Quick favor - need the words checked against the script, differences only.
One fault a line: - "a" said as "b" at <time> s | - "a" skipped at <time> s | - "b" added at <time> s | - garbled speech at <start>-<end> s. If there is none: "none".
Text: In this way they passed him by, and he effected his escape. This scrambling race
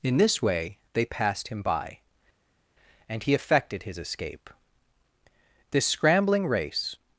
none